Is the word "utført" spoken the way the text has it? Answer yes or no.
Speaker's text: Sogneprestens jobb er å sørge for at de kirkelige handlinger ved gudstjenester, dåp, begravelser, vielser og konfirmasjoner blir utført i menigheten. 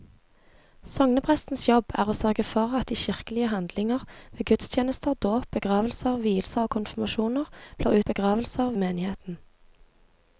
no